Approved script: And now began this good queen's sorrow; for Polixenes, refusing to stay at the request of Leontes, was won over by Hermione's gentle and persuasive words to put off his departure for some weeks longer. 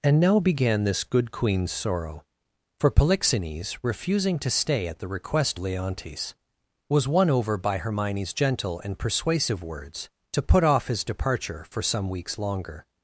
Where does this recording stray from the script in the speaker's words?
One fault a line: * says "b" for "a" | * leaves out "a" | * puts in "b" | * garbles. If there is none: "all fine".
* leaves out "of"